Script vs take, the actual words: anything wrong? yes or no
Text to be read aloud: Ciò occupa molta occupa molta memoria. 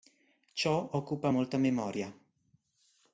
yes